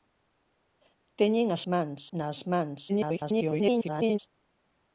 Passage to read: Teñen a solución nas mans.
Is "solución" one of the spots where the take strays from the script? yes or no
yes